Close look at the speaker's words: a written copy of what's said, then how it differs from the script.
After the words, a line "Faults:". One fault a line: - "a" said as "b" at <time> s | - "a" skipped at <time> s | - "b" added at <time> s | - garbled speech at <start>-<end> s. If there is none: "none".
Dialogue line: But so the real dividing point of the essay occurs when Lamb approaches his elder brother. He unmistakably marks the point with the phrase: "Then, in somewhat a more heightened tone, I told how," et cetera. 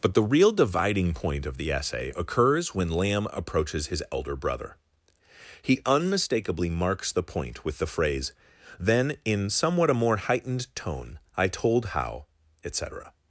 But the real dividing point of the essay occurs when Lamb approaches his elder brother. He unmistakably marks the point with the phrase: "Then, in somewhat a more heightened tone, I told how," et cetera.
Faults:
- "so" skipped at 0.1 s